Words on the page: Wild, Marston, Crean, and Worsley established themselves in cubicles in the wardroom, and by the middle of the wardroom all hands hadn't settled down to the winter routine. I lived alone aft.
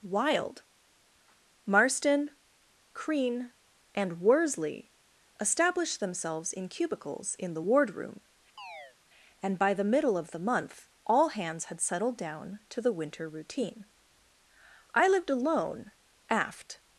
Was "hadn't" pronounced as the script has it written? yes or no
no